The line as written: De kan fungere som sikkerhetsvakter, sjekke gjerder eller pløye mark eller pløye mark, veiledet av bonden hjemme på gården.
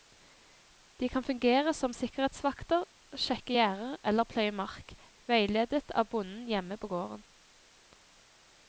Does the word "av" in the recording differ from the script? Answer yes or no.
no